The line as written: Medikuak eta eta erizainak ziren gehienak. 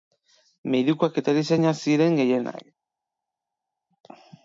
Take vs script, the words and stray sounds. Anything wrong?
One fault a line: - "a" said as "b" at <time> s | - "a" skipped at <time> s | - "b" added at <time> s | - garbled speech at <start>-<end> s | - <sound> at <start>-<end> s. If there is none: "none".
- "eta" skipped at 1.4 s